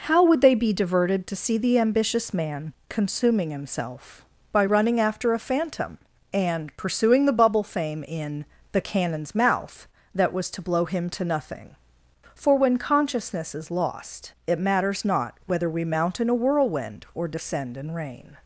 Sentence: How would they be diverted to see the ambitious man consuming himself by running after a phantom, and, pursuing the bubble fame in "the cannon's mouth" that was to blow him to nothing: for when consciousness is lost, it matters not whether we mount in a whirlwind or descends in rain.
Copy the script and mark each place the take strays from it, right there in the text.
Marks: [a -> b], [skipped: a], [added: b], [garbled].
How would they be diverted to see the ambitious man consuming himself by running after a phantom, and, pursuing the bubble fame in "the cannon's mouth" that was to blow him to nothing: for when consciousness is lost, it matters not whether we mount in a whirlwind or [descends -> descend] in rain.